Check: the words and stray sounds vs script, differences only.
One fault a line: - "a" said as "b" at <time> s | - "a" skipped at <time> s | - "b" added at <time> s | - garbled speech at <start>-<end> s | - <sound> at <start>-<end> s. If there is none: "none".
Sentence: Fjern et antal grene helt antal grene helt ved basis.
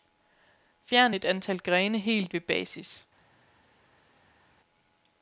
- "antal grene helt" skipped at 2.3 s